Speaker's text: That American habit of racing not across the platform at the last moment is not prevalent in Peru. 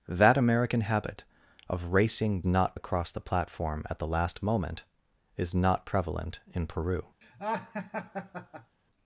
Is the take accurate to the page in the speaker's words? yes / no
yes